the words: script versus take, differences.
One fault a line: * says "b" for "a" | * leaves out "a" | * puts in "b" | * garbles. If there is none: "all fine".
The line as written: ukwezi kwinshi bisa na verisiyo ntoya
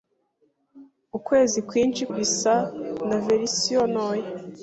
all fine